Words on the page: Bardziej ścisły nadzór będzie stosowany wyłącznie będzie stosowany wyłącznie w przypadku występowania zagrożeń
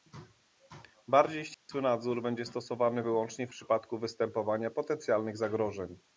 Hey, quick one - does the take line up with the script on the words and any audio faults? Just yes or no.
no